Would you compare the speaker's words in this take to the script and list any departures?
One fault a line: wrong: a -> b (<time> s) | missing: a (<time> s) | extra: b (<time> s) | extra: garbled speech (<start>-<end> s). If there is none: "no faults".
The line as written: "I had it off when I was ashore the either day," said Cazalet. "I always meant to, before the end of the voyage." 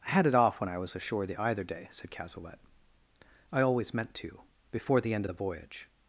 no faults